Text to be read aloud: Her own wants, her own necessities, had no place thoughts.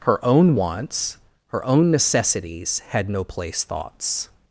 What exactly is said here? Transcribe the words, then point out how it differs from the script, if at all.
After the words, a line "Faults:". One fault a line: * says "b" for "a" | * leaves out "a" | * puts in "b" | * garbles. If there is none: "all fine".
Her own wants, her own necessities, had no place thoughts.
Faults:
all fine